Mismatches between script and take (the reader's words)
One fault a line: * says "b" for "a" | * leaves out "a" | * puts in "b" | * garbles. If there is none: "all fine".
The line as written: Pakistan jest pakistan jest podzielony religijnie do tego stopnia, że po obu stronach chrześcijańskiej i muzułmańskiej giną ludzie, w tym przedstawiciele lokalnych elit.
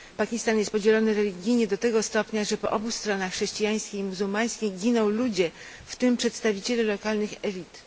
* leaves out "pakistan jest"